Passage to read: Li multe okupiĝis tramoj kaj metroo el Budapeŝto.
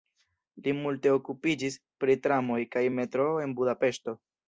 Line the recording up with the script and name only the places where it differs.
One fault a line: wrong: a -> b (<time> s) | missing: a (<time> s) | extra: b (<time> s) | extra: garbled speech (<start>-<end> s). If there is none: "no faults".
extra: pri (2.0 s)
wrong: el -> en (3.5 s)